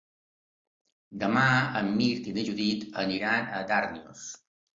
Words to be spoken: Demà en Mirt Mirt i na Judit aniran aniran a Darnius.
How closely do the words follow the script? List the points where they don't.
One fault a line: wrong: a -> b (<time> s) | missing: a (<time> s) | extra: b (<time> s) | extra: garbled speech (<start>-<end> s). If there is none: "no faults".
missing: Mirt (2.3 s)
missing: aniran (3.5 s)